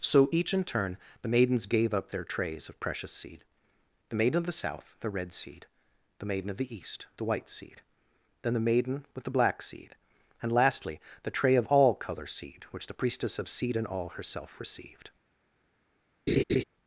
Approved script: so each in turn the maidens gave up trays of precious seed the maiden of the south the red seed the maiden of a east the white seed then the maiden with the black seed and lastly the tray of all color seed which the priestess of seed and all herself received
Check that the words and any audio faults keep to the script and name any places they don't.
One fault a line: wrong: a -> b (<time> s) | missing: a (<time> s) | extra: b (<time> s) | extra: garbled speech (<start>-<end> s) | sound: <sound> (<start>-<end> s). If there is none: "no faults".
extra: their (2.1 s)
wrong: a -> the (6.6 s)
sound: laugh (16.3-16.6 s)